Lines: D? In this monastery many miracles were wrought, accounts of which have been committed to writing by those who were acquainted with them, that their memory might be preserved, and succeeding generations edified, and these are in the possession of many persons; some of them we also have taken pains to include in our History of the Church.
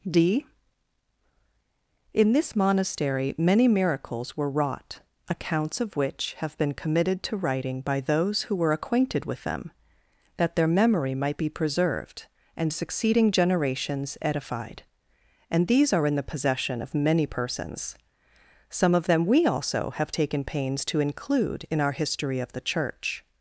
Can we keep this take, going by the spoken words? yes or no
yes